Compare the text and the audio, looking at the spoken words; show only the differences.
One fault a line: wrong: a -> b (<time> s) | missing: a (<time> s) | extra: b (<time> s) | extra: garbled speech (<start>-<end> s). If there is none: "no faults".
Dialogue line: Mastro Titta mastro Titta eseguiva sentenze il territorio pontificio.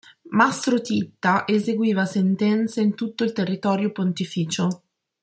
wrong: mastro Titta eseguiva sentenze -> eseguiva sentenze in tutto (1.4 s)